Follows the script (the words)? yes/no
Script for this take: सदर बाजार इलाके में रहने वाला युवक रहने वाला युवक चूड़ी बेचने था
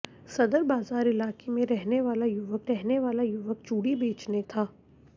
yes